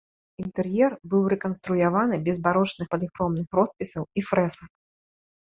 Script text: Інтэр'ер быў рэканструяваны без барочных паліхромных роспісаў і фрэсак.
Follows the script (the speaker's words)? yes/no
yes